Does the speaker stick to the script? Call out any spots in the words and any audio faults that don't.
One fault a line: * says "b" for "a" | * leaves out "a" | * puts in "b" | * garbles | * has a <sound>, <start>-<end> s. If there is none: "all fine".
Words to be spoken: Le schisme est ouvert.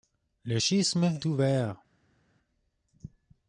* leaves out "est"